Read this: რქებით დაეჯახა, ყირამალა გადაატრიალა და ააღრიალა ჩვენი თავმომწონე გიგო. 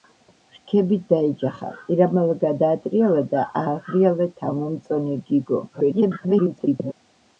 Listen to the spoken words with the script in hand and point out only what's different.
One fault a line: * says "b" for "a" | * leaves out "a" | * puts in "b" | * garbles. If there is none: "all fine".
* leaves out "ჩვენი"
* garbles